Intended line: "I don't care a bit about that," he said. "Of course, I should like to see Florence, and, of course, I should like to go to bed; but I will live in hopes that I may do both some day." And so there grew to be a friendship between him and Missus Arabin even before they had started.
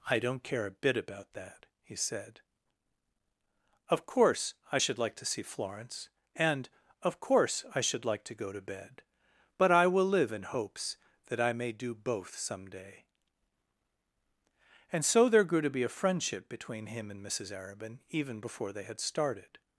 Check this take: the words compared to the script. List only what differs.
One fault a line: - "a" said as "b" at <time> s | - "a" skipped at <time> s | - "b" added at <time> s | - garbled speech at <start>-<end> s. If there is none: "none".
none